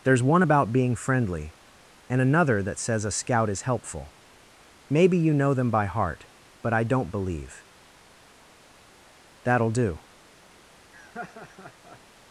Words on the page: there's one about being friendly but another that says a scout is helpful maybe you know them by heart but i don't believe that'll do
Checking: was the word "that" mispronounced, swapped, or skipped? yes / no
no